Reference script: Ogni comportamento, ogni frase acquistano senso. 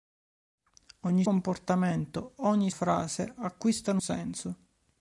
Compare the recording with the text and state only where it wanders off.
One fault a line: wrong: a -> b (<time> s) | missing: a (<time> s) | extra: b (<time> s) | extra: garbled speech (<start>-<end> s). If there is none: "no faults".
no faults